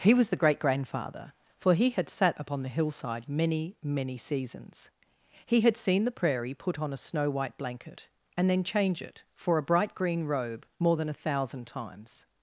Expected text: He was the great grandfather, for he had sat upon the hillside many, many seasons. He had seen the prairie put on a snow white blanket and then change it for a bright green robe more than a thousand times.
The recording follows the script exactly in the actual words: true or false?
true